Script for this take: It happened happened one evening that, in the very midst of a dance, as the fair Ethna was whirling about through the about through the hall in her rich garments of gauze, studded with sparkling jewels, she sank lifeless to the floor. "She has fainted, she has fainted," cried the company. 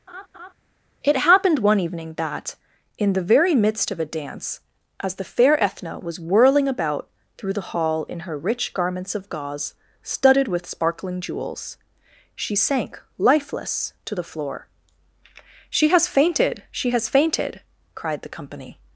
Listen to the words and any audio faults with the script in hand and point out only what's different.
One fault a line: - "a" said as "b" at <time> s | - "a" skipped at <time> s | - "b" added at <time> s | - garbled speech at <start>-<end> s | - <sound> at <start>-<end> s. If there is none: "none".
- laugh at 0.1-0.5 s
- "happened" skipped at 1.6 s
- "about through the" skipped at 7.7 s